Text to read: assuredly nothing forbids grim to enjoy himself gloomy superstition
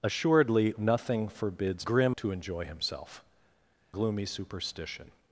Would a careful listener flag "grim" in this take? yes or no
no